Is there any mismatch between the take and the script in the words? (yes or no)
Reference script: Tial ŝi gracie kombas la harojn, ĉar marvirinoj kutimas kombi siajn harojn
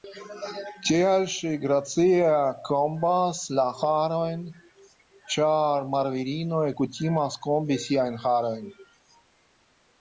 no